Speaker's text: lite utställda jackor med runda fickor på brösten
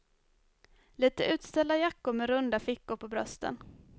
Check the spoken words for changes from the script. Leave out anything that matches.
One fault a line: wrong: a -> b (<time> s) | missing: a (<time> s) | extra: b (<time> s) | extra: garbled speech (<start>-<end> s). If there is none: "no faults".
no faults